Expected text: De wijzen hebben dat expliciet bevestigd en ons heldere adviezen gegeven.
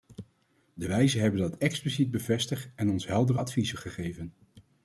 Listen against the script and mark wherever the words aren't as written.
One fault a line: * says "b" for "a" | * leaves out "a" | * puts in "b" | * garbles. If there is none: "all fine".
all fine